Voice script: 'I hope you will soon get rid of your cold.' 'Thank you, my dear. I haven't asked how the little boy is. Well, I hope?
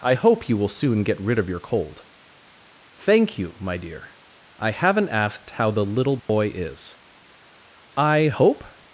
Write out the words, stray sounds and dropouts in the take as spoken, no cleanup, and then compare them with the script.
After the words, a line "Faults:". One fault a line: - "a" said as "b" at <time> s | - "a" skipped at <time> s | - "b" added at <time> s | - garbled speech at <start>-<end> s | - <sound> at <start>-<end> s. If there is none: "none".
'I hope you will soon get rid of your cold.' 'Thank you, my dear. I haven't asked how the little boy is. I hope?
Faults:
- dropout at 6.2-6.3 s
- "Well" skipped at 7.0 s